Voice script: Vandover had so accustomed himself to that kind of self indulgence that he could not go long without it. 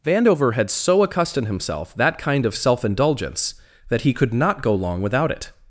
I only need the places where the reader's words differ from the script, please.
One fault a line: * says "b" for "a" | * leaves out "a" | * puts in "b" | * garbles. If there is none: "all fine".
* leaves out "to"